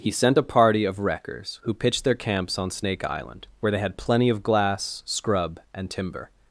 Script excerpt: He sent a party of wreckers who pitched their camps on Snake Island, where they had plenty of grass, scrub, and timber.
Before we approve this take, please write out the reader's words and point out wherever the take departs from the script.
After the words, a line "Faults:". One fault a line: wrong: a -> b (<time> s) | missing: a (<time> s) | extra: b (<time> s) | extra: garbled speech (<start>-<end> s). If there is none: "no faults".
He sent a party of wreckers who pitched their camps on Snake Island, where they had plenty of glass, scrub, and timber.
Faults:
wrong: grass -> glass (4.4 s)